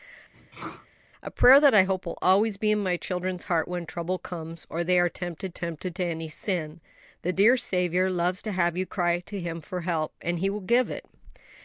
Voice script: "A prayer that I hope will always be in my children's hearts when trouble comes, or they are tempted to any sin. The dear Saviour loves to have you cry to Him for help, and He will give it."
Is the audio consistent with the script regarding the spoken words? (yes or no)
no